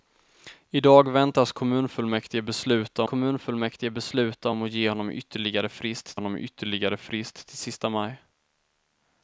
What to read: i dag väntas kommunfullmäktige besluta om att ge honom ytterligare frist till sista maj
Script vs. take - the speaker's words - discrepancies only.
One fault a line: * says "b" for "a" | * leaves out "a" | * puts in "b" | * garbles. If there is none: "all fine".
* puts in "kommunfullmäktige besluta"
* puts in "honom ytterligare frist"